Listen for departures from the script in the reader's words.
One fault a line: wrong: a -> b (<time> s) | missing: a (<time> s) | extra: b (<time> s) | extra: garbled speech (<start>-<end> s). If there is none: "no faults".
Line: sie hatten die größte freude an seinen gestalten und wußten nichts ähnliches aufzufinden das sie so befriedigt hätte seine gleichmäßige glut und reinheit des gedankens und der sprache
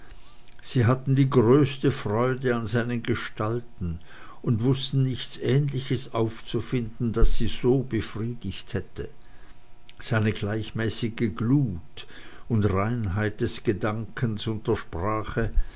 no faults